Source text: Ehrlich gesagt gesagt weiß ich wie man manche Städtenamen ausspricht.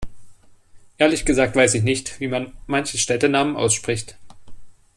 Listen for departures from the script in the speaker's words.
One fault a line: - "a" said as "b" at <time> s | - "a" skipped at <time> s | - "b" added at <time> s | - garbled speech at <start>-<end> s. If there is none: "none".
- "gesagt" skipped at 1.6 s
- "nicht" added at 1.8 s